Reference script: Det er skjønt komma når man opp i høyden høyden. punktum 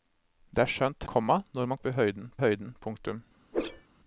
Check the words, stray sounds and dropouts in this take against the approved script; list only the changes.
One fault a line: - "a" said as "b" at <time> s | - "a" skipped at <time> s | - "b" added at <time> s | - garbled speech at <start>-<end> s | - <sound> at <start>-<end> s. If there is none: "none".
- whoosh at 3.5-3.9 s